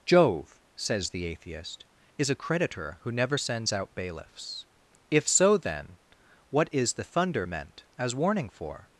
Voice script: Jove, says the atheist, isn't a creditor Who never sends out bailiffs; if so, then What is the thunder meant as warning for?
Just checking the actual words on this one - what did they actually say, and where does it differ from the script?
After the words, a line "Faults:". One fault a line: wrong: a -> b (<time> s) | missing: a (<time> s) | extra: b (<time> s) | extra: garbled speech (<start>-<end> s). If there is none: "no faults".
Jove, says the atheist, is a creditor Who never sends out bailiffs; if so, then What is the thunder meant as warning for?
Faults:
wrong: isn't -> is (2.2 s)